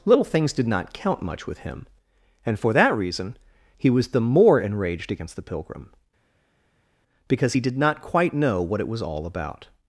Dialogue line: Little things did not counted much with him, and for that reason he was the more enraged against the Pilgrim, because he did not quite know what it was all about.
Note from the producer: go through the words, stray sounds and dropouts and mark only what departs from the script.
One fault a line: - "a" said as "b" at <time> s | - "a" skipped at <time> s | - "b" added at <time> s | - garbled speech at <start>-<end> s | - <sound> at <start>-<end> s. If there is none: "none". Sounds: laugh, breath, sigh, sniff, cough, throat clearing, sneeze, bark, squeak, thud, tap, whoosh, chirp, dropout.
- "counted" said as "count" at 0.9 s